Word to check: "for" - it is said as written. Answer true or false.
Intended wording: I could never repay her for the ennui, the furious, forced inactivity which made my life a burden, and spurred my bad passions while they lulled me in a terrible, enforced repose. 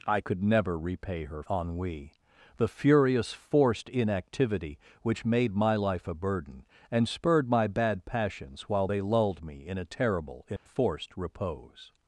false